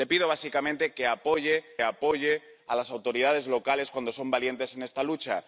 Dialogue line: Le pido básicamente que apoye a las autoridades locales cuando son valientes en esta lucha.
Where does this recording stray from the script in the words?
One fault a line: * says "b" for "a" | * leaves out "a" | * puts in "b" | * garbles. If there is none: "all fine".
* puts in "apoye"